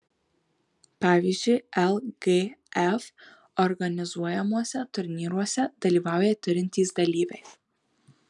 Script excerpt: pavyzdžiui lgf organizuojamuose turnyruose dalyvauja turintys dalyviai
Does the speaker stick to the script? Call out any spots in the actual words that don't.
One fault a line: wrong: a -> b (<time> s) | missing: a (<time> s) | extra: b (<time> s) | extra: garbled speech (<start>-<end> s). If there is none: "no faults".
no faults